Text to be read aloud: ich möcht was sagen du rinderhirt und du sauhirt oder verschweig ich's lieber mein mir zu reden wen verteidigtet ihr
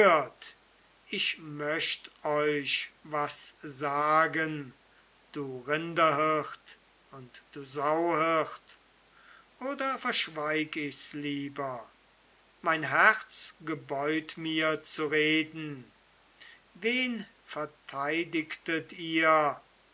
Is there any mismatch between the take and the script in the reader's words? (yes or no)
yes